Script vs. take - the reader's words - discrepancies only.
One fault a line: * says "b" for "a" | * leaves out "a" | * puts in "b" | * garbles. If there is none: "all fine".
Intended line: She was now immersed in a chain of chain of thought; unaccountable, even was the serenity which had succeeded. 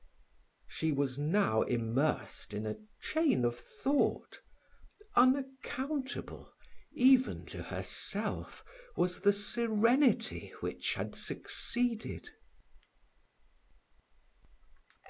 * leaves out "chain of"
* puts in "to herself"